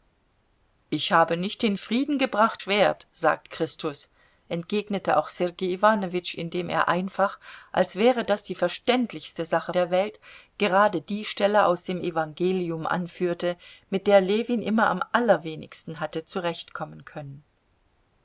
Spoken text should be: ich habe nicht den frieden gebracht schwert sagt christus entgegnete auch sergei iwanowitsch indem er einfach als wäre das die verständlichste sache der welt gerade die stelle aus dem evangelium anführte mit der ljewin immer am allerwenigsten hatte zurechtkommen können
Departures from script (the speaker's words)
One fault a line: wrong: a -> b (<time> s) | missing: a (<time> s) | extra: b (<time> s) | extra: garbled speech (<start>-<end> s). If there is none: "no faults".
no faults